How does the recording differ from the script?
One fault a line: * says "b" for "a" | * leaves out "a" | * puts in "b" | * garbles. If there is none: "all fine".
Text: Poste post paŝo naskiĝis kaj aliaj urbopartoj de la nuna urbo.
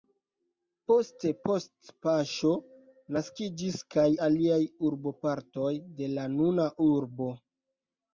all fine